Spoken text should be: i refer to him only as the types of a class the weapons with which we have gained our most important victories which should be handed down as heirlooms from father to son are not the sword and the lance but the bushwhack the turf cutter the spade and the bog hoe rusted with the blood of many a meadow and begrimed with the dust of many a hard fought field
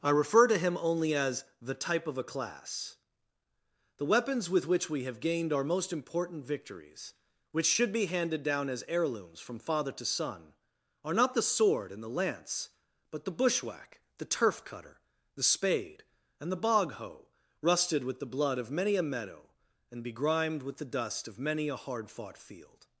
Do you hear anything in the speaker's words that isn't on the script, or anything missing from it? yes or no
yes